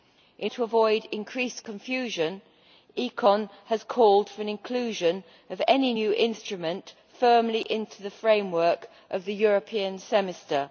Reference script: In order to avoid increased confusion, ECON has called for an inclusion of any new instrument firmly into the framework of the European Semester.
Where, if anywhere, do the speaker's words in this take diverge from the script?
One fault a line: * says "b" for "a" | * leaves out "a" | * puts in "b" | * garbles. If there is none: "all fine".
* leaves out "order"